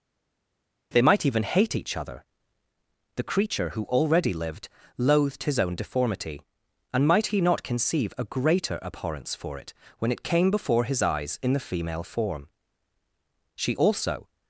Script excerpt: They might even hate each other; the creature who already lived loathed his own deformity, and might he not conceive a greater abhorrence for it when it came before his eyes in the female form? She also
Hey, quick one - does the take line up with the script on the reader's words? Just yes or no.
yes